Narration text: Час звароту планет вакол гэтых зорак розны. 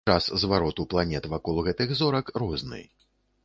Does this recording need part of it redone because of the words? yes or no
no